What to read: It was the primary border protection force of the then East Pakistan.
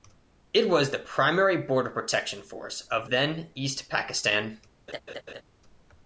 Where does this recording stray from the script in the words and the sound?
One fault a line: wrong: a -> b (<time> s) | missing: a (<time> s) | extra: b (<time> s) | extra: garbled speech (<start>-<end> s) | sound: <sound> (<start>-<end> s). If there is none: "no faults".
missing: the (3.1 s)
sound: laugh (4.9-5.4 s)